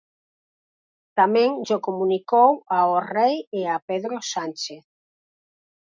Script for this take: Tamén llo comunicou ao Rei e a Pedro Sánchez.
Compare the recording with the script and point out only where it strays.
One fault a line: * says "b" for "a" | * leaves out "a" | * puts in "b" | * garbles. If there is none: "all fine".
all fine